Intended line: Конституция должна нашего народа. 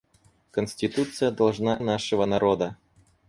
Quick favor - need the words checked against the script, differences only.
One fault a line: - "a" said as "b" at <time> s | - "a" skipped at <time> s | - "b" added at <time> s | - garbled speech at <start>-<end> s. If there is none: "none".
none